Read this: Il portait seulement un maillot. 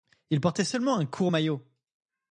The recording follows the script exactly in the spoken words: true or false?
false